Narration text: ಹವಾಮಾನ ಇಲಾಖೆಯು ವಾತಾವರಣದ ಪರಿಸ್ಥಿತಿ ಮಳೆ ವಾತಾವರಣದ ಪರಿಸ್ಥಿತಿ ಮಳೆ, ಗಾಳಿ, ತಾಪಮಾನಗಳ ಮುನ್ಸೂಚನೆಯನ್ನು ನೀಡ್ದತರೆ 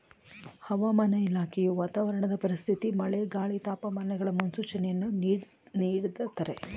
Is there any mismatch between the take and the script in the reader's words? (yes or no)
yes